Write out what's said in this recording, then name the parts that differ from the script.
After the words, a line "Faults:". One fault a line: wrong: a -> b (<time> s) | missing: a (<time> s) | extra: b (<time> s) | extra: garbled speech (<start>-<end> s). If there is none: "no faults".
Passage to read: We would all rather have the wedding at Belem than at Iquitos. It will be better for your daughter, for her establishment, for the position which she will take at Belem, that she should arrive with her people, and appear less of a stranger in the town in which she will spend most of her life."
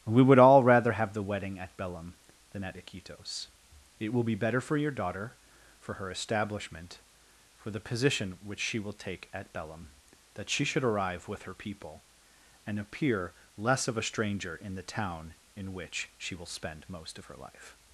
We would all rather have the wedding at Belem than at Iquitos. It will be better for your daughter, for her establishment, for the position which she will take at Belem, that she should arrive with her people, and appear less of a stranger in the town in which she will spend most of her life."
Faults:
no faults